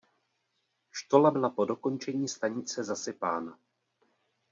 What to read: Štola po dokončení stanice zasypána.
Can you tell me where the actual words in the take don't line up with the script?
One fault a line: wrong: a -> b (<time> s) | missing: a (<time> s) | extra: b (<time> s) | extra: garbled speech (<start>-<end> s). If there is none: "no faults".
extra: byla (1.3 s)